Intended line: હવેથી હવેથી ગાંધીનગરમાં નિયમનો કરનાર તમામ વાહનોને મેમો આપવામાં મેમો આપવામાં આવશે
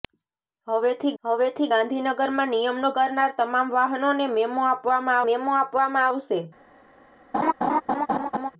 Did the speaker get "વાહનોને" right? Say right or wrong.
right